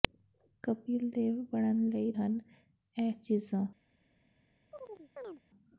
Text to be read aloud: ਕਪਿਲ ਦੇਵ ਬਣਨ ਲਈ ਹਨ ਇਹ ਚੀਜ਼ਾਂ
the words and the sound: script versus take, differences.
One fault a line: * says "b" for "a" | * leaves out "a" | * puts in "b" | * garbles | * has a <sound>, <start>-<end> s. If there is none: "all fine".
* has a chirp, 4.7-5.4 s